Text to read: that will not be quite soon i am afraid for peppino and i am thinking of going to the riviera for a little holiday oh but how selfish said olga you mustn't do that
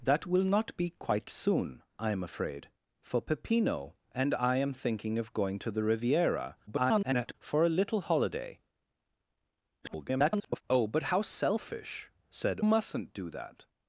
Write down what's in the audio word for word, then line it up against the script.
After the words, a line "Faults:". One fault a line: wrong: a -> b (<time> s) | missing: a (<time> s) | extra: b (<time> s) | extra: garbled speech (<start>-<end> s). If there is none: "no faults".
that will not be quite soon i am afraid for peppino and i am thinking of going to the riviera [garbled] for a little holiday [garbled] oh but how selfish said mustn't do that
Faults:
extra: garbled speech (6.7-7.3 s)
extra: garbled speech (9.8-10.6 s)
missing: olga you (12.6 s)